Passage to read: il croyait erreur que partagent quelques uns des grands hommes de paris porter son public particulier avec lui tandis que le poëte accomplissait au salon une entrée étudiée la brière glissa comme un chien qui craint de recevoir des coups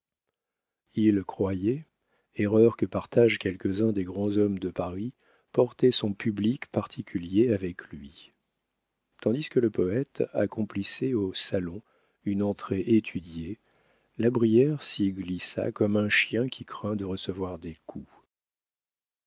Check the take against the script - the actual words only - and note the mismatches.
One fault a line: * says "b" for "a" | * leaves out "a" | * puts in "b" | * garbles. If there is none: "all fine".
* puts in "s'y"